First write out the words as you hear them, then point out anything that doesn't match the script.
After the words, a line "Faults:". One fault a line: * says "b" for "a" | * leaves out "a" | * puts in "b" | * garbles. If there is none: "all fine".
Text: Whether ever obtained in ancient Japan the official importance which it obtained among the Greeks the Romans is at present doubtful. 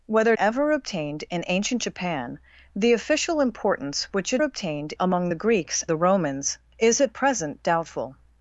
Whether ever obtained in ancient Japan the official importance which it obtained among the Greeks the Romans is at present doubtful.
Faults:
all fine